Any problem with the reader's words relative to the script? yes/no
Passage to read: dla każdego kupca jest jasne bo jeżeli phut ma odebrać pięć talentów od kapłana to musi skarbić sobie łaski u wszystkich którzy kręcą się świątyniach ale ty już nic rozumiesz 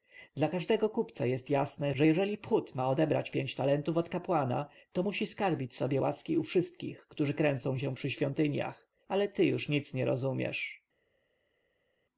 yes